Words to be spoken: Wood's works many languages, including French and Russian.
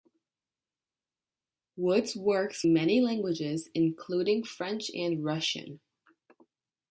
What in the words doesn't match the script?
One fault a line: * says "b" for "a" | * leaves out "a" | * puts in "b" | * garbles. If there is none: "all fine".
all fine